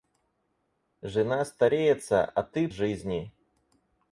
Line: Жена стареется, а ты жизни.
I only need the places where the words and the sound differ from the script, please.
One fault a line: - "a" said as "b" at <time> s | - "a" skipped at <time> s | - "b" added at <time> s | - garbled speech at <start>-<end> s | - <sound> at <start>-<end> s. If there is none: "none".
none